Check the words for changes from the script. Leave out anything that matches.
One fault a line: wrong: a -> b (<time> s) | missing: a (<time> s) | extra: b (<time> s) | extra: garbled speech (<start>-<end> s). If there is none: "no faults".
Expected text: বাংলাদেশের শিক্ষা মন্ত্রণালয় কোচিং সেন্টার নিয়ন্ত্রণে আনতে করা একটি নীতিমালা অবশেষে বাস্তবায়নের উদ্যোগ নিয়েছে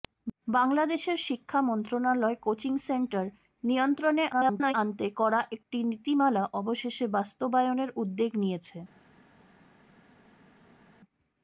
extra: garbled speech (4.3-4.7 s)